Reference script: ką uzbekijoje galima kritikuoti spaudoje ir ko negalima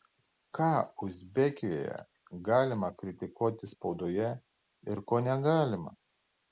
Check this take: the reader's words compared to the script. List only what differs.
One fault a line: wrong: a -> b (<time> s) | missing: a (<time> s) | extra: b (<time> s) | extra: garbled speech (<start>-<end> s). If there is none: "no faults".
no faults